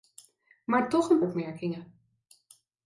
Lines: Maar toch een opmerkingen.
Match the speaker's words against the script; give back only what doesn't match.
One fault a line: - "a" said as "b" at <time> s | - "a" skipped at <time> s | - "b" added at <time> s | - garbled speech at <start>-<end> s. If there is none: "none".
none